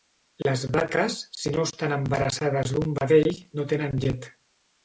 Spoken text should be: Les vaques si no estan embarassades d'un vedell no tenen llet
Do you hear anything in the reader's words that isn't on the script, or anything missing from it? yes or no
no